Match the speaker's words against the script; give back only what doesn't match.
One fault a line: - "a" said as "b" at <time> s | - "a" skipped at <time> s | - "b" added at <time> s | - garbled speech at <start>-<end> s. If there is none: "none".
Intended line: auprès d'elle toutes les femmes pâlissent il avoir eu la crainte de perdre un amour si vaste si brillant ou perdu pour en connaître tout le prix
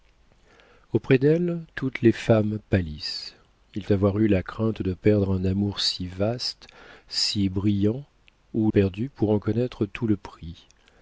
none